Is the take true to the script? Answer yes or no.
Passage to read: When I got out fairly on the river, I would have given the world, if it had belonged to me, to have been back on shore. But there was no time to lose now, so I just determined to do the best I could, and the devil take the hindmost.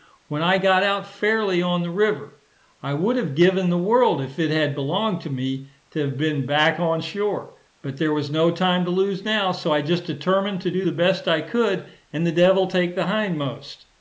yes